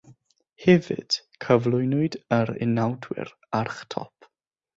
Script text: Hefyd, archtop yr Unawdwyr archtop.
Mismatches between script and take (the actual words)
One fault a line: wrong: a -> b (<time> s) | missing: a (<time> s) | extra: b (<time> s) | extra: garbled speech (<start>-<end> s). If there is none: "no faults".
wrong: archtop -> cyflwynwyd (1.4 s)